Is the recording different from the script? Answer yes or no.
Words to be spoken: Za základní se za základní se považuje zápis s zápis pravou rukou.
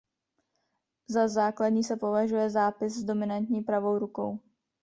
yes